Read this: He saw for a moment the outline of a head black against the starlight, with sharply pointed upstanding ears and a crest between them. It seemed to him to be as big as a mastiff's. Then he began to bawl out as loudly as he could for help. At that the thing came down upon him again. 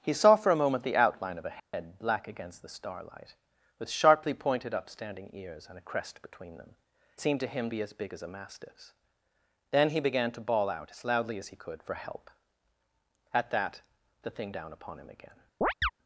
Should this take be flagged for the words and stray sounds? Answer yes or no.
yes